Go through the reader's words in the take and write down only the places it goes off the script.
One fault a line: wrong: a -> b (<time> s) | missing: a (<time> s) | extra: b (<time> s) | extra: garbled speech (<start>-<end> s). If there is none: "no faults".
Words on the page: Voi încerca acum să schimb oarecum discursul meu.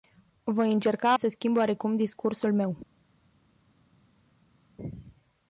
missing: acum (1.1 s)